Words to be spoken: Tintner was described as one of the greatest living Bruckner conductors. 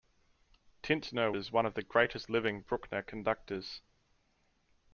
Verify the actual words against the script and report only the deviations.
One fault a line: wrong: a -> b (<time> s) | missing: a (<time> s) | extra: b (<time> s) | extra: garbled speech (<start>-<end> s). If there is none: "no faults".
missing: was described (1.3 s)